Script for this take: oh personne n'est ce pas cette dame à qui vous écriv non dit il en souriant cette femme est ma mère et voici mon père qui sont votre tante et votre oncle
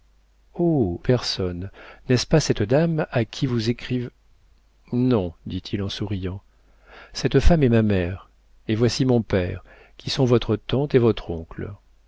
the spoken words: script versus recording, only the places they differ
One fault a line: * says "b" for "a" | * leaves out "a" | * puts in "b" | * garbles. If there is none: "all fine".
all fine